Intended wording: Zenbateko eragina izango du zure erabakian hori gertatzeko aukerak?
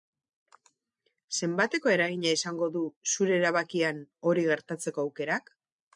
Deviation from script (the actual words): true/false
false